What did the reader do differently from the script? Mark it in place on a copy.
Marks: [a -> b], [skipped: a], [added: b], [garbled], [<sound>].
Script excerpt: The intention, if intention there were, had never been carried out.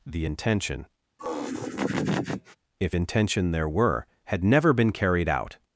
The intention, [laugh] if intention there were, had never been carried out.